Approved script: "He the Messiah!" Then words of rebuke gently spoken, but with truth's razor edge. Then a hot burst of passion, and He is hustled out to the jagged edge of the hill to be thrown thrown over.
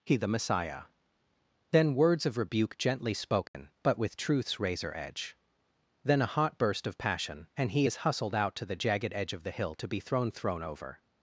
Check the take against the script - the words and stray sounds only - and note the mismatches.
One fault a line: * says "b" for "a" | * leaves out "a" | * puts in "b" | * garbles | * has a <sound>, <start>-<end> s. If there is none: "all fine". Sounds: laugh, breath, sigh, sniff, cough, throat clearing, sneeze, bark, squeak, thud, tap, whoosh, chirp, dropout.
* has a dropout, 3.5-3.5 s